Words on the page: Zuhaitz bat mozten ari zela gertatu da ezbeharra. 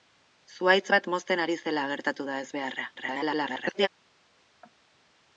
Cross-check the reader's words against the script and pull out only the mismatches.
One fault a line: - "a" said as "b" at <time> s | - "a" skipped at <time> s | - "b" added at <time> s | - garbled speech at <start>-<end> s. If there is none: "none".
- garbled speech at 3.0-3.9 s